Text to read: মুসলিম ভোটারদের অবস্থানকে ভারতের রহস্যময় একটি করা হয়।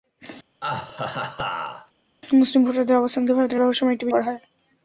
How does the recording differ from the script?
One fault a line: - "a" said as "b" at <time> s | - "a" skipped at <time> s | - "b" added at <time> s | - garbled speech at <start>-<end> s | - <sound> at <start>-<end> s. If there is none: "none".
- laugh at 0.6-1.9 s